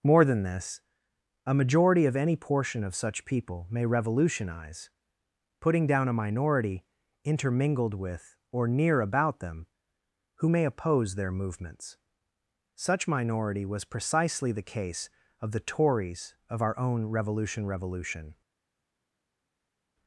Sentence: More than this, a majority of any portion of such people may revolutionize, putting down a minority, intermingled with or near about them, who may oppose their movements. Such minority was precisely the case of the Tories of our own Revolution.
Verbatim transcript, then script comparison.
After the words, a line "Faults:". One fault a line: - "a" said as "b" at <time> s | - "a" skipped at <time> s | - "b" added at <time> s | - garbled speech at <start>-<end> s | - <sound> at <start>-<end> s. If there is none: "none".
More than this, a majority of any portion of such people may revolutionize, putting down a minority, intermingled with or near about them, who may oppose their movements. Such minority was precisely the case of the Tories of our own Revolution Revolution.
Faults:
- "Revolution" added at 17.6 s